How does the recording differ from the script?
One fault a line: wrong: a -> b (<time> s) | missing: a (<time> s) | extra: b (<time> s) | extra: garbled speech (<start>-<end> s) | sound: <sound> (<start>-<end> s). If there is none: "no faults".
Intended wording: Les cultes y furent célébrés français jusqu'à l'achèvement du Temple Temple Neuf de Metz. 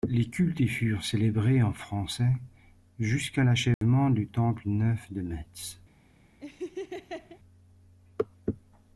extra: en (1.6 s)
sound: dropout (3.7-3.8 s)
missing: Temple (4.6 s)
sound: laugh (6.4-7.4 s)